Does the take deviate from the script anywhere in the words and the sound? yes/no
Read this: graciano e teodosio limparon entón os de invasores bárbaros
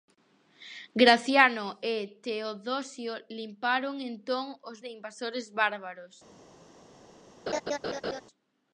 yes